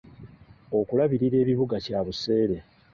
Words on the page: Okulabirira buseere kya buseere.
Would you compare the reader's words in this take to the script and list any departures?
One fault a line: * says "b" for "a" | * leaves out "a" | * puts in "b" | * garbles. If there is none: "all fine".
* says "ebibuga" for "buseere"